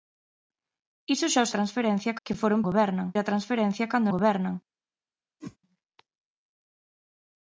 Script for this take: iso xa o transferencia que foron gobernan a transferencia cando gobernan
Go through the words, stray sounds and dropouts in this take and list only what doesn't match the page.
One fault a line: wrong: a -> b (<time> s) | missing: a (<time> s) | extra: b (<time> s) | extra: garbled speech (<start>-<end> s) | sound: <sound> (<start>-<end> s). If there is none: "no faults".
sound: whoosh (5.4-5.6 s)